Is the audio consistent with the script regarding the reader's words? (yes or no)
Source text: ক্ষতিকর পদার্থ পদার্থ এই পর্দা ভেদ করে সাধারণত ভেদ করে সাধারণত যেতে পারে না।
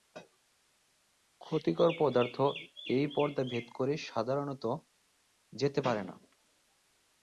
no